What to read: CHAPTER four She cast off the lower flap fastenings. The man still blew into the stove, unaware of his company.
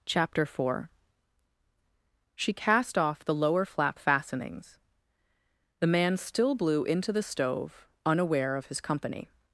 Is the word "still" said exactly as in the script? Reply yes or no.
yes